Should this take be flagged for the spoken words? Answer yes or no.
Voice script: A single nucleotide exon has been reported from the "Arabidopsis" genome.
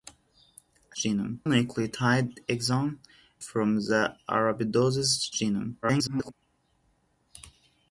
yes